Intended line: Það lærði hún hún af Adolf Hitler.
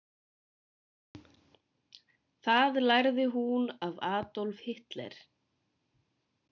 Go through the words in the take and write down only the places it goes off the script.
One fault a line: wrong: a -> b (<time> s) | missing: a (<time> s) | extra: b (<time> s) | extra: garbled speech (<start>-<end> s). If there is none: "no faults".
missing: hún (3.7 s)